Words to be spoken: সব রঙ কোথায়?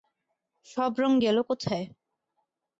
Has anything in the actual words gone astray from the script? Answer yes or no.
yes